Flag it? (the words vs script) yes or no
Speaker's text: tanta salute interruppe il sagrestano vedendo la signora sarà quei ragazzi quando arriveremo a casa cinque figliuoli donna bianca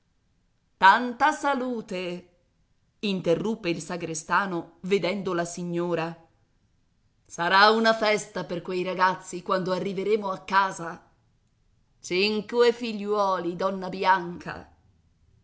yes